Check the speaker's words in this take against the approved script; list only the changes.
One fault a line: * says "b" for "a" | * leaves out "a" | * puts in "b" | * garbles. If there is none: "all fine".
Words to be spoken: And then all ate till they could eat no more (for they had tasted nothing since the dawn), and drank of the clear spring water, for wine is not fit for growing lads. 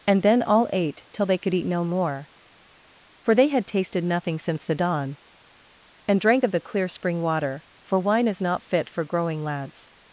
all fine